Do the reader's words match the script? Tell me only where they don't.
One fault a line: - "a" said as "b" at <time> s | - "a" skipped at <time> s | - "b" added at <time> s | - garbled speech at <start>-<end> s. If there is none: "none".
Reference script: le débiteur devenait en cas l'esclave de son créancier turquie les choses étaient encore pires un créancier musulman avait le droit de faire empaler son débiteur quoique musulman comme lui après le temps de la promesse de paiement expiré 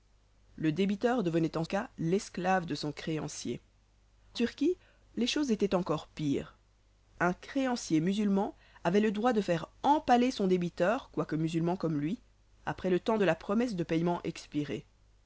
none